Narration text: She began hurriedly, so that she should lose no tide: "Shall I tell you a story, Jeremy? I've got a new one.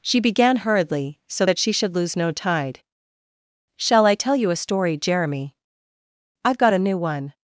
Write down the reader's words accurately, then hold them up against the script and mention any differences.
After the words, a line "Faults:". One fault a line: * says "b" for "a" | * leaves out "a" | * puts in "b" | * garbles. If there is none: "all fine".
She began hurriedly, so that she should lose no tide: "Shall I tell you a story, Jeremy? I've got a new one.
Faults:
all fine